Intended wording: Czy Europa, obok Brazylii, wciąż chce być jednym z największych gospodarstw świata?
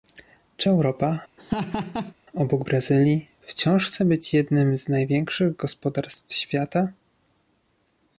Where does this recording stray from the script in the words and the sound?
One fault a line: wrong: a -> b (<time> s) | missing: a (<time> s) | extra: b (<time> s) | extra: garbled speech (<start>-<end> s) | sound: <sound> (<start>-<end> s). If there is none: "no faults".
sound: laugh (1.4-2.1 s)